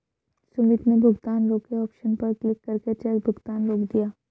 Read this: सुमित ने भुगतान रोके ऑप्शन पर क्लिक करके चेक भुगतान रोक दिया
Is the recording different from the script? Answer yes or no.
no